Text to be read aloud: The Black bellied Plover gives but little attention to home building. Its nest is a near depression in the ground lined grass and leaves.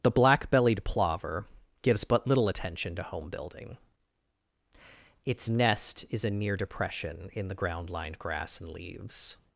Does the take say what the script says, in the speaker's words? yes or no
yes